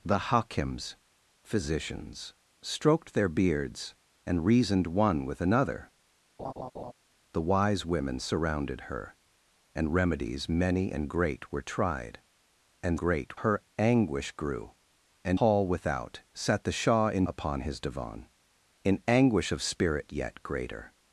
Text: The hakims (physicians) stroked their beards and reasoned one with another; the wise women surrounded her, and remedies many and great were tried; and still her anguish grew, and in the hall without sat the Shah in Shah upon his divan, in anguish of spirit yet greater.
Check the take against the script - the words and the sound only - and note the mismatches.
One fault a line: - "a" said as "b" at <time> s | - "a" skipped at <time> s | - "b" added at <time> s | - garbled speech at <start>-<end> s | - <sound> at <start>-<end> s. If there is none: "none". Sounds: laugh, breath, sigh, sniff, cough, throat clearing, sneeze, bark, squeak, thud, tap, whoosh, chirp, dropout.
- laugh at 6.4-6.9 s
- "still" said as "great" at 13.0 s
- "in the" skipped at 15.4 s
- "Shah" skipped at 17.2 s